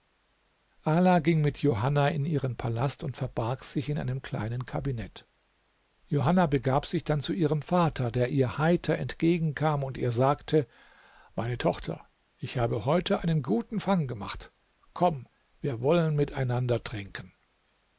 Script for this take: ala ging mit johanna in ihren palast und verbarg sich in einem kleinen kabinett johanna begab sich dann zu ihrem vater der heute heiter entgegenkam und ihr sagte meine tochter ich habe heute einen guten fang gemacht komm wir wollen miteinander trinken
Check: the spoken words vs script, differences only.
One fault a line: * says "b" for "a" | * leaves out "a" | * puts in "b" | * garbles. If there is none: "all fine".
* says "ihr" for "heute"